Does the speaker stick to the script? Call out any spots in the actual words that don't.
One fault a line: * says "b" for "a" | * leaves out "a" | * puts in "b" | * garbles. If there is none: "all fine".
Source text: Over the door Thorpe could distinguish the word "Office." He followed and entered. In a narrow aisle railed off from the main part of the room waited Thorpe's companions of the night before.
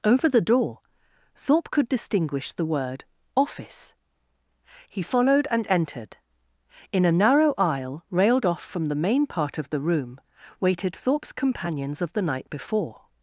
all fine